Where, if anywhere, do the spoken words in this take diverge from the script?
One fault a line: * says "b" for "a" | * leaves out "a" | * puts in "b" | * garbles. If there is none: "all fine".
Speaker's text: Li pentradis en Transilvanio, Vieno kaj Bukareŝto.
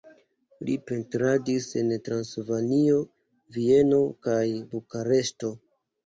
all fine